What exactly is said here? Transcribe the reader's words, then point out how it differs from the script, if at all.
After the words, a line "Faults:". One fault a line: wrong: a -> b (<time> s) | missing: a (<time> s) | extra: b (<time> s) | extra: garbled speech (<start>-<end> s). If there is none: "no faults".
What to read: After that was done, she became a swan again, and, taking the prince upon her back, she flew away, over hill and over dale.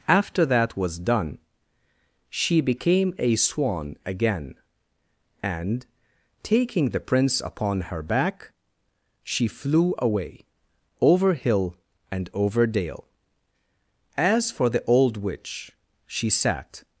After that was done, she became a swan again, and, taking the prince upon her back, she flew away, over hill and over dale. As for the old witch, she sat
Faults:
extra: As for the old witch she sat (14.2 s)